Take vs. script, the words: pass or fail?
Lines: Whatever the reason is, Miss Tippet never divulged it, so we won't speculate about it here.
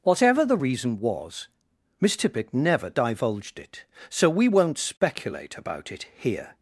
fail